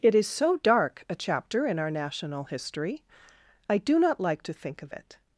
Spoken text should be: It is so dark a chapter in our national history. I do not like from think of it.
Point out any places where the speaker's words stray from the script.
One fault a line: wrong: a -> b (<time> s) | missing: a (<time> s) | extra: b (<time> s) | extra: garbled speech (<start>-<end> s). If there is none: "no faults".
wrong: from -> to (4.4 s)